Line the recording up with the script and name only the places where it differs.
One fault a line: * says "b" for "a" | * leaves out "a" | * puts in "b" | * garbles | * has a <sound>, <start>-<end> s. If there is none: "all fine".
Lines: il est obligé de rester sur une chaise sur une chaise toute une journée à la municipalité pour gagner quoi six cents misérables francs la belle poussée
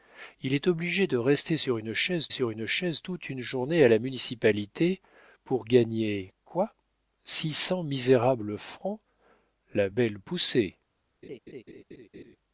* has a laugh, 11.2-12.4 s